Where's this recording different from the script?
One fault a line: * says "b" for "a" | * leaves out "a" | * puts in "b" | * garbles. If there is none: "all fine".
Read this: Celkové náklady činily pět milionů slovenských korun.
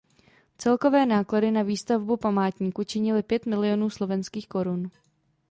* puts in "na výstavbu památníku"